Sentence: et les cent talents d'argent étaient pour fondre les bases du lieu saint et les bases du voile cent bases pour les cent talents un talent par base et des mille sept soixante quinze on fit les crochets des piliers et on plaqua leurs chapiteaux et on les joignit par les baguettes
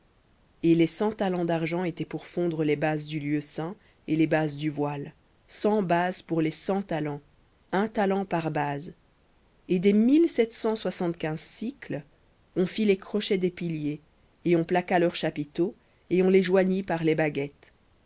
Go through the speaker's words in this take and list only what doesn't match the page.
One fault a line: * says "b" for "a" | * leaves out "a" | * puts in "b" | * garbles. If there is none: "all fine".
* puts in "cent"